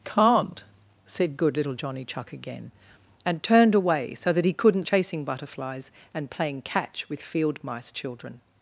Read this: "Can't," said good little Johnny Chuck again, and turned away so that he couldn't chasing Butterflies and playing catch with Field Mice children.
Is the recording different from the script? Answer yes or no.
no